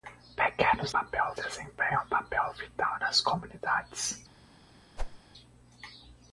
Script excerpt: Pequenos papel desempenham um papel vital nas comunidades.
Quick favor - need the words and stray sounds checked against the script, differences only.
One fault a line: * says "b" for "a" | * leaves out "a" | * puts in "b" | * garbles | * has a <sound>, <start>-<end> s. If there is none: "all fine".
* has a whoosh, 5.0-5.2 s